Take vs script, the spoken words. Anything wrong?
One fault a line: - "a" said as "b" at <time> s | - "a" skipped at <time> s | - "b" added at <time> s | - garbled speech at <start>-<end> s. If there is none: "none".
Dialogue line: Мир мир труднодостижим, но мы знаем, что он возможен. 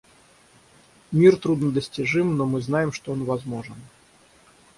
- "мир" skipped at 1.4 s